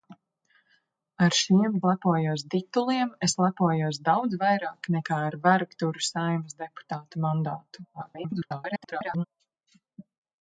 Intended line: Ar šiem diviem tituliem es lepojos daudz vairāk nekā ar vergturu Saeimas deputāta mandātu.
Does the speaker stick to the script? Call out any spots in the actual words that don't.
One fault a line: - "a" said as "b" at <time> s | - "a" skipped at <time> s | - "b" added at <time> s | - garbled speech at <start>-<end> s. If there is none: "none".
- "diviem" said as "lepojos" at 1.9 s
- garbled speech at 7.9-9.2 s